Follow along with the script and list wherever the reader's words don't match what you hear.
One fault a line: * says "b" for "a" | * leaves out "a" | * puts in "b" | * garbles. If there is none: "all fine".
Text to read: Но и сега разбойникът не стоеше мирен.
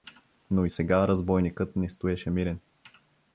all fine